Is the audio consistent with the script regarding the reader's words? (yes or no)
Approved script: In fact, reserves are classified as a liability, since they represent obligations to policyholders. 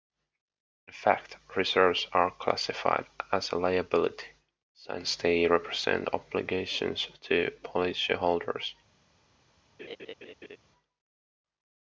yes